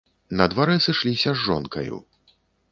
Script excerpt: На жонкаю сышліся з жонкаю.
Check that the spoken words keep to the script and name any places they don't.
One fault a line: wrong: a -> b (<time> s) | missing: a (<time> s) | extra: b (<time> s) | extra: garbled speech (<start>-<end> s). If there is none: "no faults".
wrong: жонкаю -> дварэ (0.5 s)